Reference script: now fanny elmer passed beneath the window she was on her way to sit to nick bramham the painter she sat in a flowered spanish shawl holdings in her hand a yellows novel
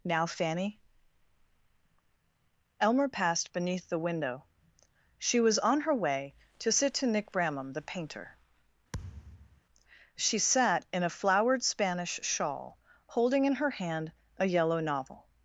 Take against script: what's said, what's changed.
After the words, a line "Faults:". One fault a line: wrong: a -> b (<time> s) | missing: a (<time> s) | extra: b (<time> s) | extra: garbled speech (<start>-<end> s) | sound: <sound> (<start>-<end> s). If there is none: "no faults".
now fanny elmer passed beneath the window she was on her way to sit to nick bramham the painter she sat in a flowered spanish shawl holding in her hand a yellow novel
Faults:
sound: thud (8.9-9.6 s)
wrong: holdings -> holding (13.1 s)
wrong: yellows -> yellow (14.5 s)